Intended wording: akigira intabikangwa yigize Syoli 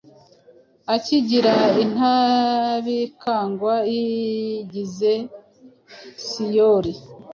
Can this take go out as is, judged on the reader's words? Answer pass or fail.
pass